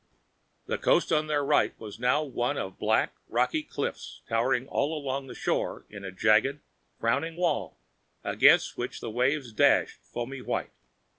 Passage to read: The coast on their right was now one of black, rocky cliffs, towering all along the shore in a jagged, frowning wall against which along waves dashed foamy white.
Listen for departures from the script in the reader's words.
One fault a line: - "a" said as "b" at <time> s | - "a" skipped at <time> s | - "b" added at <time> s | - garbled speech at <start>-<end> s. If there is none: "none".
- "along" said as "the" at 9.0 s